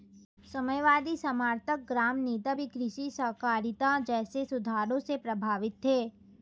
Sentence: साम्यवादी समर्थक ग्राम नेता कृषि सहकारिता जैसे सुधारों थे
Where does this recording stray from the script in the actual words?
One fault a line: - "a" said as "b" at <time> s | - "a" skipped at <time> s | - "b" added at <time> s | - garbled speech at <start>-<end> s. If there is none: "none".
- "भी" added at 2.5 s
- "से प्रभावित" added at 5.0 s